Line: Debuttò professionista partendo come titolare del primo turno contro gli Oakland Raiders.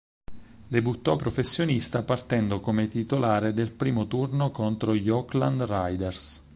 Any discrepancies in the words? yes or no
no